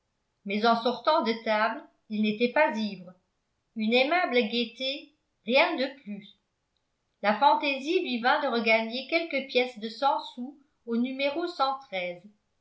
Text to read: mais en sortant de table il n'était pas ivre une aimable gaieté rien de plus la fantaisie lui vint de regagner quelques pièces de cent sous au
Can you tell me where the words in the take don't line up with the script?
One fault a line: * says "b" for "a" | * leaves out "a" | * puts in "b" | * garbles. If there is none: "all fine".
all fine